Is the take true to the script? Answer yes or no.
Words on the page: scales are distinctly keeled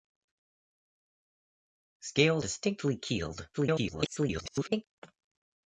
no